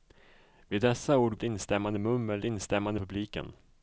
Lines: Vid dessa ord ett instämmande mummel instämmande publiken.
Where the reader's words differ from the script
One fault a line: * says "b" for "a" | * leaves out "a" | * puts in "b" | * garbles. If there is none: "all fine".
all fine